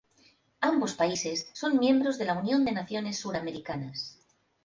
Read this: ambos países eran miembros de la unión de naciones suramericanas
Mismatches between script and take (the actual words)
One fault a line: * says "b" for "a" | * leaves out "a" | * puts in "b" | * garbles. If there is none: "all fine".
* says "son" for "eran"